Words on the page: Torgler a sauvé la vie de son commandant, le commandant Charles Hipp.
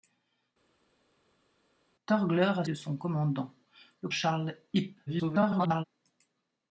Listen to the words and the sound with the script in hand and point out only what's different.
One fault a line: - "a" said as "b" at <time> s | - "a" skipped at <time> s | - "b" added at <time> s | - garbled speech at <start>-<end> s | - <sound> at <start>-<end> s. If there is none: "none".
- "sauvé la vie" skipped at 2.6 s
- "commandant" skipped at 4.1 s
- garbled speech at 5.1-5.8 s